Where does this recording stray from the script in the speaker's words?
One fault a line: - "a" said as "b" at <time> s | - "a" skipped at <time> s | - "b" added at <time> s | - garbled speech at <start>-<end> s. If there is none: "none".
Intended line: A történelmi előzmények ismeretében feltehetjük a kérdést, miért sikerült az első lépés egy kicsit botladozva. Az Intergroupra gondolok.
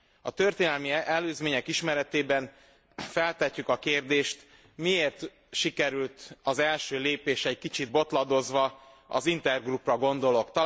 none